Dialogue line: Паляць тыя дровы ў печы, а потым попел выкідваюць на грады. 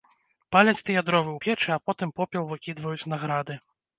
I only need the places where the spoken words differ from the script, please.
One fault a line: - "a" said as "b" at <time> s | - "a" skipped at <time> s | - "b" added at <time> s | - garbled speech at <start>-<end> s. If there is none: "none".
none